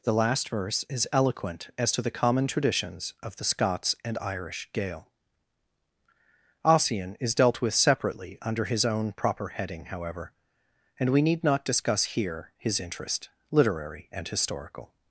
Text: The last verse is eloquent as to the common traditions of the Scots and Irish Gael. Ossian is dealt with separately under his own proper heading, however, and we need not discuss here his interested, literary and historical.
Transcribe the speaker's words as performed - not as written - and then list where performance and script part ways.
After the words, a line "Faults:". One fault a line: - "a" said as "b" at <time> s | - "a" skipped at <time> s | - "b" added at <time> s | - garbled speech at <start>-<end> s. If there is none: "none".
The last verse is eloquent as to the common traditions of the Scots and Irish Gael. Ossian is dealt with separately under his own proper heading, however, and we need not discuss here his interest, literary and historical.
Faults:
- "interested" said as "interest" at 12.8 s